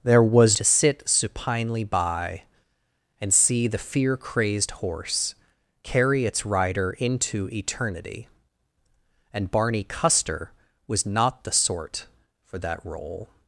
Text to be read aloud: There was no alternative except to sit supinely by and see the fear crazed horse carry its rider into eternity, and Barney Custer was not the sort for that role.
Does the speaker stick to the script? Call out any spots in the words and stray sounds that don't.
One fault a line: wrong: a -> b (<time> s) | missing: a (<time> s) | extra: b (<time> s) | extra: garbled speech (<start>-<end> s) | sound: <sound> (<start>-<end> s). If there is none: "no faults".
missing: no alternative except (0.6 s)